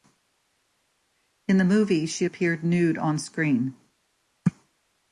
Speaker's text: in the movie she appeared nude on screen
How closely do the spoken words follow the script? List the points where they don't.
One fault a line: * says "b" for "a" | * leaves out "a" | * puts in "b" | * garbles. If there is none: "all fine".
all fine